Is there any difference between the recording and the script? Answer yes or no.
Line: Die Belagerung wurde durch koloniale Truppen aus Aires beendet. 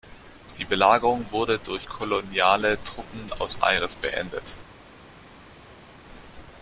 no